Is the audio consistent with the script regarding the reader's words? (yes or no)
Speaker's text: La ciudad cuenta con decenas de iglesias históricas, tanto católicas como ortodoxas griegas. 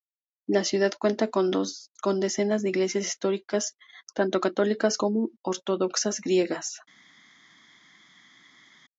yes